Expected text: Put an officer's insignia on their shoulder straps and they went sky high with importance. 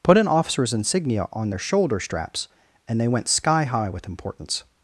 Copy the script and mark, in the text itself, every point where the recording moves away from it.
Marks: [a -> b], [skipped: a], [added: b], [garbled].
Put an officer's insignia on their shoulder straps and they went sky high with importance.